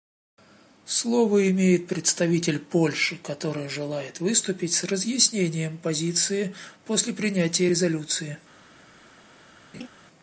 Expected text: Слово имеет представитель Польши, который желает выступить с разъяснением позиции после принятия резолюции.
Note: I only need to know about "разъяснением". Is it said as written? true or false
true